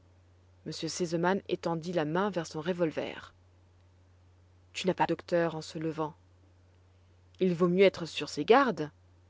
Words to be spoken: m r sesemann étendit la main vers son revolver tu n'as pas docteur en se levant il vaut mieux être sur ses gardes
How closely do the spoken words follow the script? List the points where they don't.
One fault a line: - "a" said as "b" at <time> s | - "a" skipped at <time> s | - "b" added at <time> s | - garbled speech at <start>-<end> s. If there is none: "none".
none